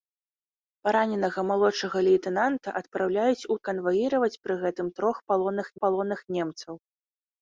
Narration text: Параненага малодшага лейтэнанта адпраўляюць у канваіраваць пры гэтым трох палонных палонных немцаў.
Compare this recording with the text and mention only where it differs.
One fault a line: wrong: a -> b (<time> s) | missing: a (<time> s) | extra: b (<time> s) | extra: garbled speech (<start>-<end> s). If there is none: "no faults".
no faults